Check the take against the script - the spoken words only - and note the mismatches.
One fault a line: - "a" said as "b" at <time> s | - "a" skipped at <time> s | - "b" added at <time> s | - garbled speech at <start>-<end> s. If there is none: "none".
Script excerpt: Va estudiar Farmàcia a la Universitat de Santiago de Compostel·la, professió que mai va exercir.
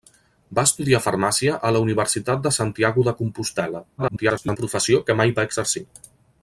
- garbled speech at 4.0-4.6 s